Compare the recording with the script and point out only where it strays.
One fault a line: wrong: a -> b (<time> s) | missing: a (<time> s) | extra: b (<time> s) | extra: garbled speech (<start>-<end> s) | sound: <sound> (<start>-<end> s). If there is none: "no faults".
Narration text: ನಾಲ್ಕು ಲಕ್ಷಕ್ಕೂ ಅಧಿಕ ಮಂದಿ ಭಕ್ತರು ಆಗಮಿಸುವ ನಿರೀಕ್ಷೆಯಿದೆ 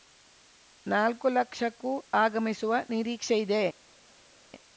missing: ಅಧಿಕ ಮಂದಿ ಭಕ್ತರು (1.9 s)